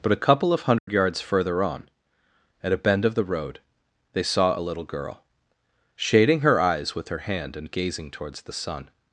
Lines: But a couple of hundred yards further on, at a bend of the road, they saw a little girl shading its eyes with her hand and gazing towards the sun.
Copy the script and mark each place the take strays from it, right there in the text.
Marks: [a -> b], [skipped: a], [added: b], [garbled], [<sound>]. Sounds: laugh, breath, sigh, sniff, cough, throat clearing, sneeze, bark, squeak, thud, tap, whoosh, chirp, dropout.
But a couple of hundred [dropout] yards further on, at a bend of the road, they saw a little girl shading [its -> her] eyes with her hand and gazing towards the sun.